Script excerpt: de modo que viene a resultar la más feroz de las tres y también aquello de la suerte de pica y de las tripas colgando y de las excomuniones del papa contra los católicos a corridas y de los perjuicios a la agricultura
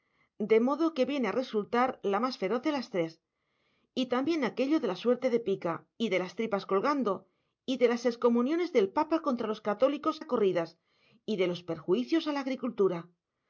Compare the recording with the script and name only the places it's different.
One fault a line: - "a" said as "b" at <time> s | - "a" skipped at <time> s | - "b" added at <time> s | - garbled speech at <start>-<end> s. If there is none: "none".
none